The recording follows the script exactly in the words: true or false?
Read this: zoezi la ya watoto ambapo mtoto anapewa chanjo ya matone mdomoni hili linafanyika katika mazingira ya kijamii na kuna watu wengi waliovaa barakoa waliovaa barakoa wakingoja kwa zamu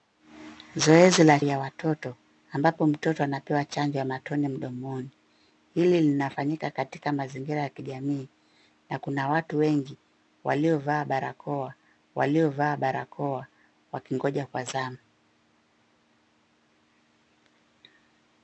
true